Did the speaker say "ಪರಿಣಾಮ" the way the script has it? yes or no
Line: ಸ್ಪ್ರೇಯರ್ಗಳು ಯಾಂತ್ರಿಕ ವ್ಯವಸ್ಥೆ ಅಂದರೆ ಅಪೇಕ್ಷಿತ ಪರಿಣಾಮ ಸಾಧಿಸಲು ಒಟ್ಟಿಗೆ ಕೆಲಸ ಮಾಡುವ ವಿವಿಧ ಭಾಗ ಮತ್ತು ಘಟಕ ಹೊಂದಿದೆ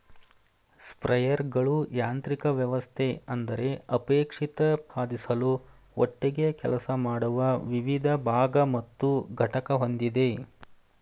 no